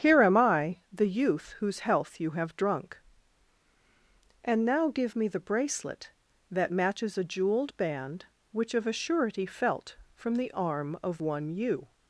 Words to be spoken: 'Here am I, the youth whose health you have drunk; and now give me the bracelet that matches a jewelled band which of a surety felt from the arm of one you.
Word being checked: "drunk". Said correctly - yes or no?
yes